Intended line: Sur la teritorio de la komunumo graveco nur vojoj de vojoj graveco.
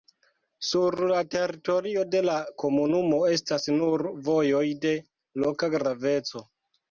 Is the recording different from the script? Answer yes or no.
yes